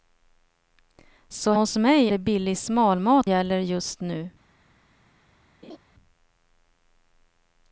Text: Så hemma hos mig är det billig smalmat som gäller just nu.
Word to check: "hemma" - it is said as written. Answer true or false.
false